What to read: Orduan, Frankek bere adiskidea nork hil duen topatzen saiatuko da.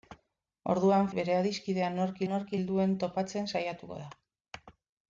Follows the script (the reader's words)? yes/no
no